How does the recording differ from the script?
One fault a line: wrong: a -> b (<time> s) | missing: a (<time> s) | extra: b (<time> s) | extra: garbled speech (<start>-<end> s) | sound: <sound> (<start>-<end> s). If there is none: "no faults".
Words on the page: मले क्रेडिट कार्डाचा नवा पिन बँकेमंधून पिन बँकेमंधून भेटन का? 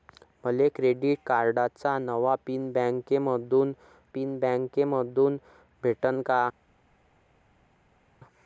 no faults